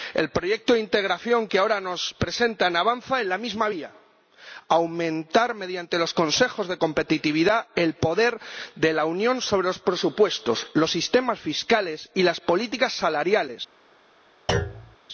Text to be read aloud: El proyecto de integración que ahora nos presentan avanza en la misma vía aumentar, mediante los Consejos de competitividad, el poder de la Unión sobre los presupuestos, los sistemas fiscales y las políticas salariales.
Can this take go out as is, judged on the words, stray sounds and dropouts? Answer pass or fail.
fail